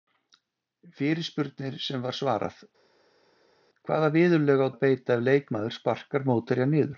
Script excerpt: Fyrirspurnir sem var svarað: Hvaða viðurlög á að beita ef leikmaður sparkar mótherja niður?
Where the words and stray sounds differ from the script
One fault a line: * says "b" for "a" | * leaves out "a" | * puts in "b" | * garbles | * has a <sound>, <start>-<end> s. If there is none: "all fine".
all fine